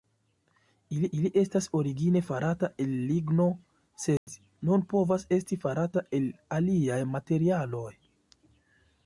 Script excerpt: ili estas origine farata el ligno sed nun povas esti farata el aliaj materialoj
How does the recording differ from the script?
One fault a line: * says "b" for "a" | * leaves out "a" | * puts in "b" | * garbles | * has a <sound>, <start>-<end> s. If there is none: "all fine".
* puts in "ili"
* has a dropout, 4.2-4.3 s